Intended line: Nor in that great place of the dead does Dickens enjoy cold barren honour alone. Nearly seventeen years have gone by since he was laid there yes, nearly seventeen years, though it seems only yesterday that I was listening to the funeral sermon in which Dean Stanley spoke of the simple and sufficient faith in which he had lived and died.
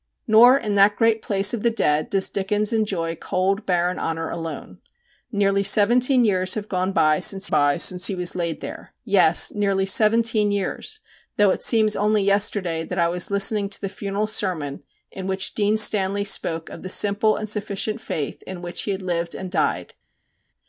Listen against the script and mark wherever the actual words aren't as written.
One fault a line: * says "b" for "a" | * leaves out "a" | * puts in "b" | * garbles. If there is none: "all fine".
* puts in "by since"